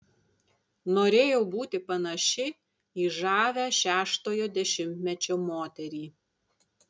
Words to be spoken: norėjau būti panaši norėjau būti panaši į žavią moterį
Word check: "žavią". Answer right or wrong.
wrong